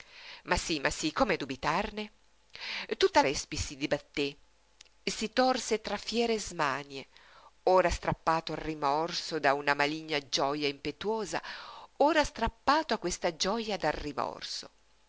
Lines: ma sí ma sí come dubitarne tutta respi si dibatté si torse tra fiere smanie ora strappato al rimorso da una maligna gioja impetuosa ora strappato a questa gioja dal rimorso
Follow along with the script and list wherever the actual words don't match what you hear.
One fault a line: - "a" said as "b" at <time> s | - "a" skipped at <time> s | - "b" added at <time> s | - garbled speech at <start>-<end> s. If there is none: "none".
none